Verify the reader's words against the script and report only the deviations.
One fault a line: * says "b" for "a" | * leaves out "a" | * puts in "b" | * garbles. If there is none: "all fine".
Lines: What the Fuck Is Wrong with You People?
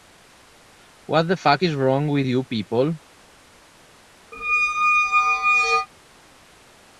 all fine